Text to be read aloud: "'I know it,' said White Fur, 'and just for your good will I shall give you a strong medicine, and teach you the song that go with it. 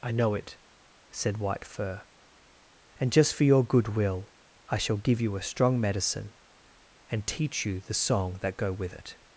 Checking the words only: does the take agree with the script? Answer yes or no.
yes